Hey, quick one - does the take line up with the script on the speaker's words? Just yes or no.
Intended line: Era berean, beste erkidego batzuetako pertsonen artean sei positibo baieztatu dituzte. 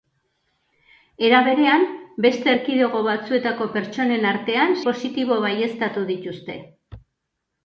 no